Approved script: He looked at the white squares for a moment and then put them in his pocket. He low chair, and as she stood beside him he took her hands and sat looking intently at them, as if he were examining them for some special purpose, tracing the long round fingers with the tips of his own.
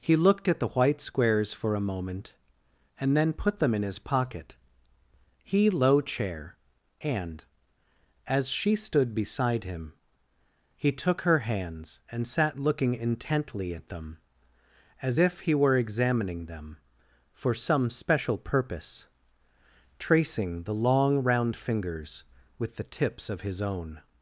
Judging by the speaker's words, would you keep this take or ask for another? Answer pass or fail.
pass